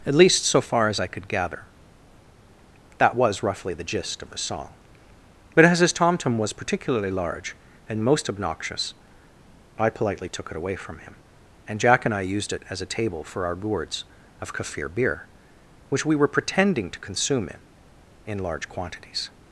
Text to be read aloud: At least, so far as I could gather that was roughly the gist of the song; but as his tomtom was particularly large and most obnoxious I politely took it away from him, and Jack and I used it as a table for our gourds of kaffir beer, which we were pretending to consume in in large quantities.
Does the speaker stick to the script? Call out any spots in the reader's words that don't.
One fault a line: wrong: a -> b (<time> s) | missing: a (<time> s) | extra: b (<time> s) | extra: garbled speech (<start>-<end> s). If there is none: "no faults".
no faults